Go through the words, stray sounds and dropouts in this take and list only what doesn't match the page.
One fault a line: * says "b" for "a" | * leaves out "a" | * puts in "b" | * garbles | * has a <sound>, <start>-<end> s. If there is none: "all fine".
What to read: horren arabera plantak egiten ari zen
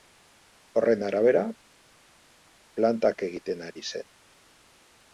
all fine